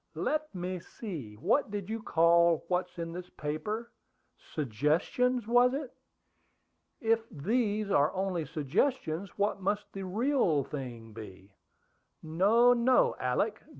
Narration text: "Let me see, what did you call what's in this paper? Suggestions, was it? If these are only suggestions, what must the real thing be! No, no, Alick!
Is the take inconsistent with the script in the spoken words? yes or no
no